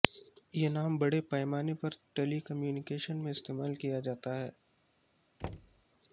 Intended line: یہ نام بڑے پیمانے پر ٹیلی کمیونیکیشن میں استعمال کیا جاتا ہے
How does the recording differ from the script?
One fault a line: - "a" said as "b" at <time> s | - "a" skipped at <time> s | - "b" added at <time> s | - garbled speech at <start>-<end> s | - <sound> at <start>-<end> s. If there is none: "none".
- thud at 5.4-5.8 s